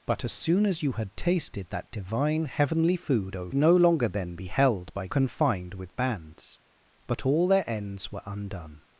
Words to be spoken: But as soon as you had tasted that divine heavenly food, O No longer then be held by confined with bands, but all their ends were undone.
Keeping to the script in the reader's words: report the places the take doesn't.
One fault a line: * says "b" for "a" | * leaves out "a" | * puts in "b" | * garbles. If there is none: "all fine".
all fine